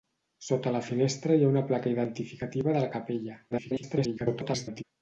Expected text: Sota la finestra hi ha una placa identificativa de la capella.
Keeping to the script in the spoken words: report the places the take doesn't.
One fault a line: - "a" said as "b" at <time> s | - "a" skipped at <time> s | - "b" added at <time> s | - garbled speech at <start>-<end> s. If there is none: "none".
- garbled speech at 3.5-4.8 s